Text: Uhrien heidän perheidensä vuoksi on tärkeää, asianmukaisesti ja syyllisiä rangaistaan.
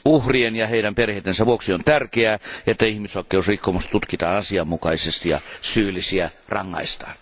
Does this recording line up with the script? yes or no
no